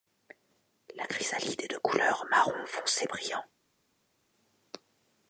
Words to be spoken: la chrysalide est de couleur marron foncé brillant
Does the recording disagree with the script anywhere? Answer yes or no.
no